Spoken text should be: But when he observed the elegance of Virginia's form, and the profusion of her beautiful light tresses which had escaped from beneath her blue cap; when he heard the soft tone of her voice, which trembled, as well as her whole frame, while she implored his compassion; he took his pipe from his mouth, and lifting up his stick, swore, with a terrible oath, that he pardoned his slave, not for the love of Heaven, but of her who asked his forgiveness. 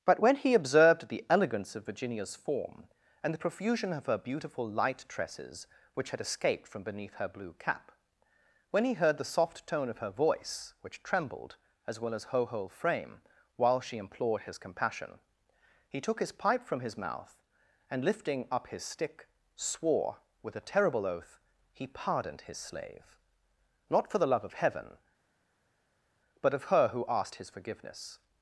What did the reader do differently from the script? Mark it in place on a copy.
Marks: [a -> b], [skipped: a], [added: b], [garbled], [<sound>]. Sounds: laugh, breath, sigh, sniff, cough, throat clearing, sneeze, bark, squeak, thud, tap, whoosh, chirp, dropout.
But when he observed the elegance of Virginia's form, and the profusion of her beautiful light tresses which had escaped from beneath her blue cap; when he heard the soft tone of her voice, which trembled, as well as her whole frame, while she implored his compassion; he took his pipe from his mouth, and lifting up his stick, swore, with a terrible oath, [skipped: that] he pardoned his slave, not for the love of Heaven, but of her who asked his forgiveness.